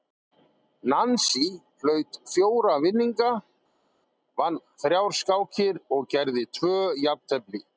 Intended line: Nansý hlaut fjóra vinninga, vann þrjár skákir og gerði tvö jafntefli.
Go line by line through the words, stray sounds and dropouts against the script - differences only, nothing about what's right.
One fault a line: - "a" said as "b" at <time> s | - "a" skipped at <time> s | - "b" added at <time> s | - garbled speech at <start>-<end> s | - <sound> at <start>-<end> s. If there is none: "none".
none